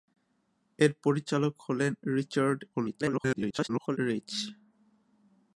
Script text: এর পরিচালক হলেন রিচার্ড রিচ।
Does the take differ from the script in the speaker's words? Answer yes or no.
yes